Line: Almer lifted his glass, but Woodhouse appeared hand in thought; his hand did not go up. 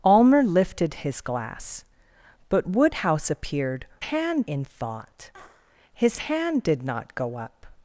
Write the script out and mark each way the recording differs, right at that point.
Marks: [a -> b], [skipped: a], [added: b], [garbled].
Almer lifted his glass, but Woodhouse appeared hand in thought; his hand did not go up.